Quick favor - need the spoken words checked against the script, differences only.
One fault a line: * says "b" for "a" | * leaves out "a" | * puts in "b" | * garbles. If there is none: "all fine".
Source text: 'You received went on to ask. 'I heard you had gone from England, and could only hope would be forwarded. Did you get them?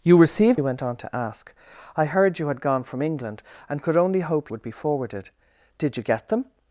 all fine